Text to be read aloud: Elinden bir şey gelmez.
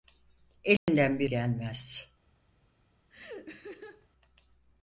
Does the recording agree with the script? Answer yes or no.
no